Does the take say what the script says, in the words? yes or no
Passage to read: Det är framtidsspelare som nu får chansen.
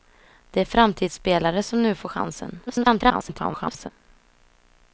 no